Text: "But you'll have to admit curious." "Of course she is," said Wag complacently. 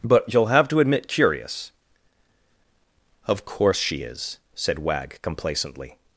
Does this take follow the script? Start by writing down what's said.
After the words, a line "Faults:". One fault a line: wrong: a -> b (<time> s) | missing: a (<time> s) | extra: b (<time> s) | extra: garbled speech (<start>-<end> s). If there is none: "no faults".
"But you'll have to admit curious." "Of course she is," said Wag complacently.
Faults:
no faults